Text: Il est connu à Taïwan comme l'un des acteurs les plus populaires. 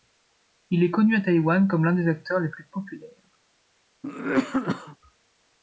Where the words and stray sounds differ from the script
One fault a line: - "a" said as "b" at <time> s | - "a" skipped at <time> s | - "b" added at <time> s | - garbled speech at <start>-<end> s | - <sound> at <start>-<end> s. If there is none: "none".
- cough at 4.0-5.0 s